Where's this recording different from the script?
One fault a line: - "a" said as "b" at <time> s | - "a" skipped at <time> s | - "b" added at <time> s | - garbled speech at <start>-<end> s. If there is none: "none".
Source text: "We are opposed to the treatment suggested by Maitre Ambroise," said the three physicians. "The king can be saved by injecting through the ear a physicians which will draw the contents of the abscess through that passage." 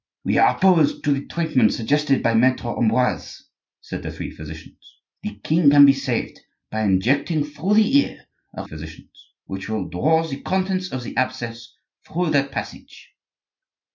none